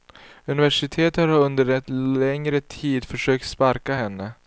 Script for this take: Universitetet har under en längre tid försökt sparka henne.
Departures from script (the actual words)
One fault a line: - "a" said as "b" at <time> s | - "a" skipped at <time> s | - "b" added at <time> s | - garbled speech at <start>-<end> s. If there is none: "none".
none